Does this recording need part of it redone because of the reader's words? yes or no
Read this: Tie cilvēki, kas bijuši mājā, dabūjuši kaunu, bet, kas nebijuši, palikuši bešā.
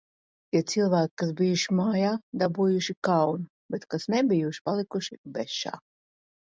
no